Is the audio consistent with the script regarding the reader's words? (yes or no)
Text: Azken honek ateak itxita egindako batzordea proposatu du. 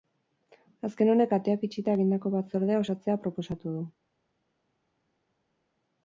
no